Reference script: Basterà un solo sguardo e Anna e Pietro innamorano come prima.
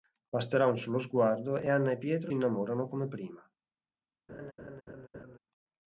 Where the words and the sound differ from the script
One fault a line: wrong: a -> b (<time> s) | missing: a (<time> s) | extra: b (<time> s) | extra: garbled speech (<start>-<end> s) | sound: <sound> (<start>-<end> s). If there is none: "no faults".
sound: laugh (4.3-5.4 s)